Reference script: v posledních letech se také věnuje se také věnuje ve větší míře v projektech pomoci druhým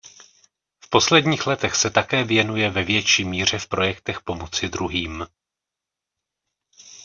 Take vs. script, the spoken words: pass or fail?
fail